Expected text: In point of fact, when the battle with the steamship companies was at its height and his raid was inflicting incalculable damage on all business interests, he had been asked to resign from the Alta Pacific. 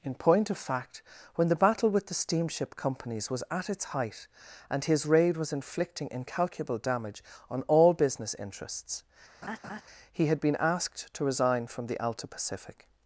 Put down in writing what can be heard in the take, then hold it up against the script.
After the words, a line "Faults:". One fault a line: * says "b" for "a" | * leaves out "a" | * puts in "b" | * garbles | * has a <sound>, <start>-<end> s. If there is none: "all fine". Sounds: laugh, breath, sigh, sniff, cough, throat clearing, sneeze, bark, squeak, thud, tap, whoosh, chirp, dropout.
In point of fact, when the battle with the steamship companies was at its height and his raid was inflicting incalculable damage on all business interests, he had been asked to resign from the Alta Pacific.
Faults:
* has a laugh, 9.4-9.8 s